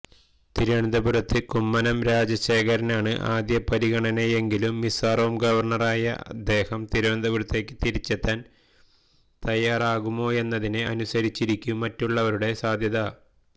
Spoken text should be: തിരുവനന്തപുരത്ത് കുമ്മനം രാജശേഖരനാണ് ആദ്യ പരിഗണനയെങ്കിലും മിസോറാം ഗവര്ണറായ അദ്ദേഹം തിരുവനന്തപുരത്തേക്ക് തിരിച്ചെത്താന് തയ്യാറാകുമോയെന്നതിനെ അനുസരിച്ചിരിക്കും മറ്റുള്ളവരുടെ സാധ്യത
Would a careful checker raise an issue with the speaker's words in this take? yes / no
no